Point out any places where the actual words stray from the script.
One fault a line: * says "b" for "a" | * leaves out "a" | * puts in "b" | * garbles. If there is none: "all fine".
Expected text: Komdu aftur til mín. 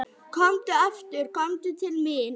* puts in "komdu"